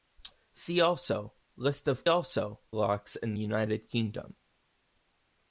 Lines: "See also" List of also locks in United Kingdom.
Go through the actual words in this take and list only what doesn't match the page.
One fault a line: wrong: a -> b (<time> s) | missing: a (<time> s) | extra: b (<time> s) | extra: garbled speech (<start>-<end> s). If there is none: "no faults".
no faults